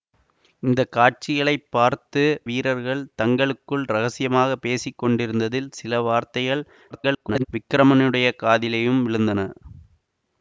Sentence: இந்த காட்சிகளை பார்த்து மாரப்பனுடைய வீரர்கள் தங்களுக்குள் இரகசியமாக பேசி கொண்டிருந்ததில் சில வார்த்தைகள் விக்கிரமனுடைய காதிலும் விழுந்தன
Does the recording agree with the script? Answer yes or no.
no